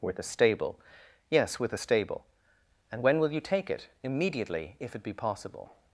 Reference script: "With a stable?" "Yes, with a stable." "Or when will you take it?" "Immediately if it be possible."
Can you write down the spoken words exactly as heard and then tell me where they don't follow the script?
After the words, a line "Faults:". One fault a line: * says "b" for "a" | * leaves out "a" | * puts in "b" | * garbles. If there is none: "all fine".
"With a stable?" "Yes, with a stable." "And when will you take it?" "Immediately if it be possible."
Faults:
* says "And" for "Or"